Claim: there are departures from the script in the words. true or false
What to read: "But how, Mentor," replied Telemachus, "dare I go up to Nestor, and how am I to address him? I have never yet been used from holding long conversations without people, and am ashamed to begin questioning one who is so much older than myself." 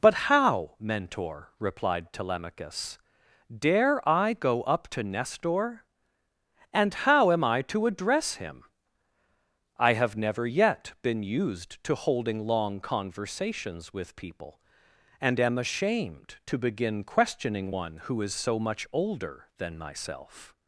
true